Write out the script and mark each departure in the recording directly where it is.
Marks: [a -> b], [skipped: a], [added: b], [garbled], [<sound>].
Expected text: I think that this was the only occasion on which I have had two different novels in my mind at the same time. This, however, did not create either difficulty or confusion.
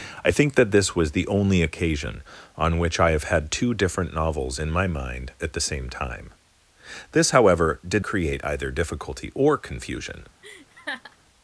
I think that this was the only occasion on which I have had two different novels in my mind at the same time. This, however, did [skipped: not] create either difficulty or confusion. [laugh]